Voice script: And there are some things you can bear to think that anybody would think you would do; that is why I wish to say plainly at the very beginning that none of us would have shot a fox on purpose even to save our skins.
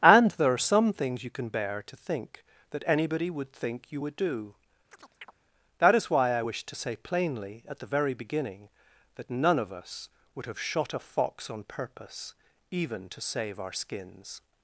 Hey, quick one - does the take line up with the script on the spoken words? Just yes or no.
yes